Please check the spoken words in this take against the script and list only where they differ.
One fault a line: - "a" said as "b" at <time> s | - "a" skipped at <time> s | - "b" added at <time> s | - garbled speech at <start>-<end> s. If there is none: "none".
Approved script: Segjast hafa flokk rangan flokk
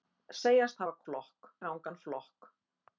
none